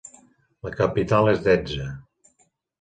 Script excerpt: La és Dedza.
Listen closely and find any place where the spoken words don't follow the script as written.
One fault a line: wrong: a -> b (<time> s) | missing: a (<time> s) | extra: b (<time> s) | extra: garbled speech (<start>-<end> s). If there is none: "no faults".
extra: capital (0.8 s)